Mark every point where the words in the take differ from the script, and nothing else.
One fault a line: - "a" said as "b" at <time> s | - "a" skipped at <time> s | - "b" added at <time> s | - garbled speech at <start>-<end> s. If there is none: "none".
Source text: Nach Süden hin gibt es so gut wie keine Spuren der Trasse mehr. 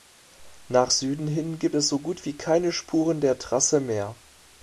none